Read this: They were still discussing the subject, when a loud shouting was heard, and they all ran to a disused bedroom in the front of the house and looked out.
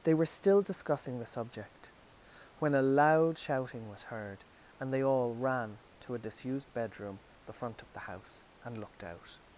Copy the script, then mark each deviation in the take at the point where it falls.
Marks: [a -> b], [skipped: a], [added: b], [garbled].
They were still discussing the subject, when a loud shouting was heard, and they all ran to a disused bedroom [skipped: in] the front of the house and looked out.